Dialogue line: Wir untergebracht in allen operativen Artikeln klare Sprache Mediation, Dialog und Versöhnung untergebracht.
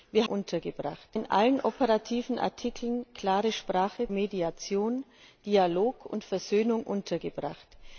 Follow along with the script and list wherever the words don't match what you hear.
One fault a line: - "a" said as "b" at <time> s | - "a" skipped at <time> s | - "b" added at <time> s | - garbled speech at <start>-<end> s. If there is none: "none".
none